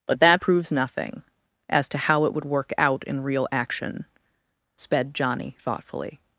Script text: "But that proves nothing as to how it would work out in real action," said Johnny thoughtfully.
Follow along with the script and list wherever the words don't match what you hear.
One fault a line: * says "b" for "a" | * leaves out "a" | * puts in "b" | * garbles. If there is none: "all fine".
* says "sped" for "said"